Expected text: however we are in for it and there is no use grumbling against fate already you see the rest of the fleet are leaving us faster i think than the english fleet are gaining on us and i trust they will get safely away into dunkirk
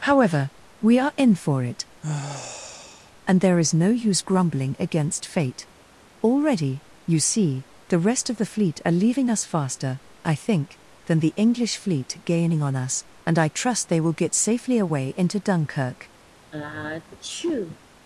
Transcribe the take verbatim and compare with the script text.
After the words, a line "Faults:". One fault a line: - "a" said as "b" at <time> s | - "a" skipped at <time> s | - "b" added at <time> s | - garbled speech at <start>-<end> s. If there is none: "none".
however we are in for it and there is no use grumbling against fate already you see the rest of the fleet are leaving us faster i think than the english fleet gaining on us and i trust they will get safely away into dunkirk
Faults:
- "are" skipped at 12.2 s